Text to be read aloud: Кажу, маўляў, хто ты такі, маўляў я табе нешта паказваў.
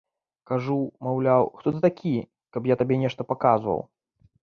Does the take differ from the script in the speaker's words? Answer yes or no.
yes